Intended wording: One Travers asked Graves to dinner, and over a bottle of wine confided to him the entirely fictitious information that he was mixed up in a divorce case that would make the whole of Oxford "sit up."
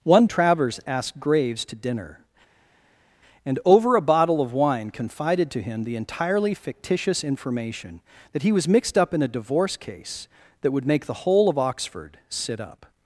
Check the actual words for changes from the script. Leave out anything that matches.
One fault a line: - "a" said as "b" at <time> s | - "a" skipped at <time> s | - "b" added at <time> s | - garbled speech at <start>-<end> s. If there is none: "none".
none